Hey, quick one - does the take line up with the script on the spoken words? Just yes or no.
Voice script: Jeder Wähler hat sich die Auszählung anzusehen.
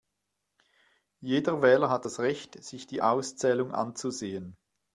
no